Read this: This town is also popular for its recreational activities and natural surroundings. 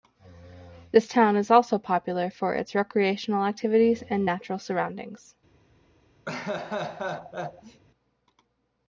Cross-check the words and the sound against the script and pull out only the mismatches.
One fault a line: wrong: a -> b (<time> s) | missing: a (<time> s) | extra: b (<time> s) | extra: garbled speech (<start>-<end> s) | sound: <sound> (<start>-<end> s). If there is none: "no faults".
sound: laugh (6.3-7.8 s)